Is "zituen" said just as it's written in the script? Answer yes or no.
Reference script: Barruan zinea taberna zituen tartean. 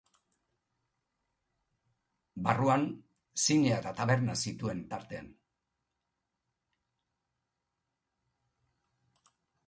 yes